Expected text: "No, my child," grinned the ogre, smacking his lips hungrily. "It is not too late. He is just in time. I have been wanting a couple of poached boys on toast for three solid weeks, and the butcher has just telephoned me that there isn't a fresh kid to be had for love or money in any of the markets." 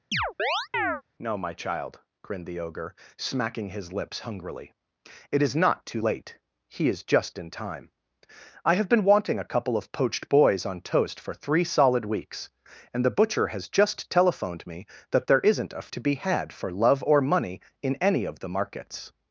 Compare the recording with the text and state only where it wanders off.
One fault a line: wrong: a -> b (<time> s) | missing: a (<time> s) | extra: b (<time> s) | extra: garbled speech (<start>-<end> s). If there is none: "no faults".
missing: fresh kid (15.9 s)